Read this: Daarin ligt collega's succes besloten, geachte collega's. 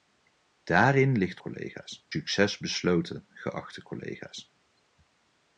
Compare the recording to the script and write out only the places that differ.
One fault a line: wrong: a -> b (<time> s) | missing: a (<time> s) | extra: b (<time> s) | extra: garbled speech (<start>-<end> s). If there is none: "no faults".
no faults